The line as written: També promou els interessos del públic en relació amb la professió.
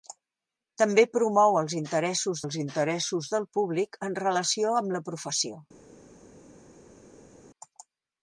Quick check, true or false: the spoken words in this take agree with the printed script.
false